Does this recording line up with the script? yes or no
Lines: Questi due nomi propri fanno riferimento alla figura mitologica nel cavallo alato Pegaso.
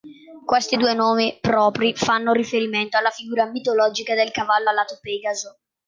no